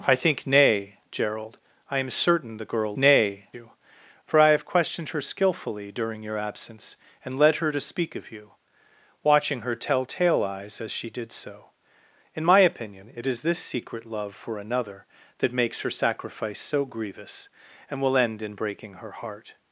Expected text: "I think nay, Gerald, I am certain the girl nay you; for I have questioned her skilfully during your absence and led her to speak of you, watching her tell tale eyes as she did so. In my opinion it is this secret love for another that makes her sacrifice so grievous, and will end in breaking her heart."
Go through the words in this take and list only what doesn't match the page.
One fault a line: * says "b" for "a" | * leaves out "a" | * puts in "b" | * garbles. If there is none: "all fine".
all fine